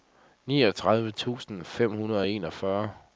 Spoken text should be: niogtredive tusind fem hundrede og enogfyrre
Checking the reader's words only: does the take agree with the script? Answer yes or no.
yes